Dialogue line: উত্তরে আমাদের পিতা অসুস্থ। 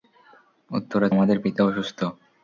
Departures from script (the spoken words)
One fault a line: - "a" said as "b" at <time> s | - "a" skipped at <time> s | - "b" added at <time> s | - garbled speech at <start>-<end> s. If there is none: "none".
none